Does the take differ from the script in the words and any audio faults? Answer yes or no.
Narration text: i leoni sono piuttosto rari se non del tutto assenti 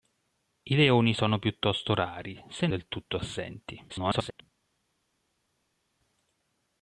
yes